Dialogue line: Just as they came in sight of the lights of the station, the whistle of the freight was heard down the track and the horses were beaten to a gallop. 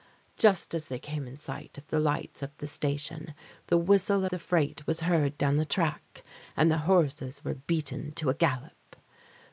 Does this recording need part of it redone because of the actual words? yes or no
yes